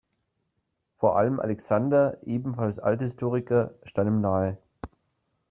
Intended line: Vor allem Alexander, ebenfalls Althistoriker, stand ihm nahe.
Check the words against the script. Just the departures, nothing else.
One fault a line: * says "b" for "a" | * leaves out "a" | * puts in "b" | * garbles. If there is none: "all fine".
all fine